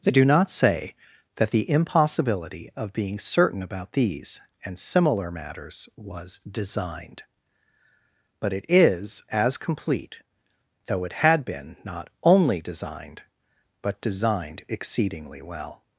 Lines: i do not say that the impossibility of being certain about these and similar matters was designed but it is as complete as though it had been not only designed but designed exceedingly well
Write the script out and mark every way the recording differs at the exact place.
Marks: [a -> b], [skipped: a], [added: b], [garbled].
i do not say that the impossibility of being certain about these and similar matters was designed but it is as complete [skipped: as] though it had been not only designed but designed exceedingly well